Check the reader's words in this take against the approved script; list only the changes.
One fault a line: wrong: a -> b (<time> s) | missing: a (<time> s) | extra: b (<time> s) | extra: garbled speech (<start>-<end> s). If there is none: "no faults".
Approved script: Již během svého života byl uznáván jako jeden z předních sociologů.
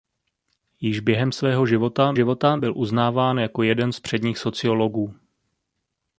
extra: života (2.1 s)